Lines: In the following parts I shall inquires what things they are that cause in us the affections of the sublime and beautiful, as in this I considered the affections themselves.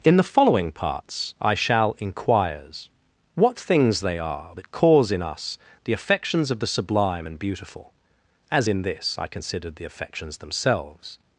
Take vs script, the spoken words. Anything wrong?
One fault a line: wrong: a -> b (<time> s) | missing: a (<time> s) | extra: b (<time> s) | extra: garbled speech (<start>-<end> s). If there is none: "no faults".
no faults